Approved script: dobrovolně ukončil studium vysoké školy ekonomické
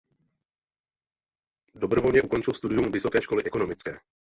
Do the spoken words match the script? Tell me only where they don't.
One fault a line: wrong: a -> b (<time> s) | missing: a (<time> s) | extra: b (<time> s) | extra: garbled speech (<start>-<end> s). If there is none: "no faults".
no faults